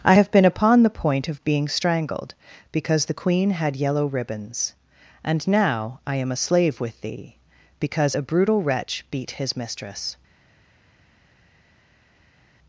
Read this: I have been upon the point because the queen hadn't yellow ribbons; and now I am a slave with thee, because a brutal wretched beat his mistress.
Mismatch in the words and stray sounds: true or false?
true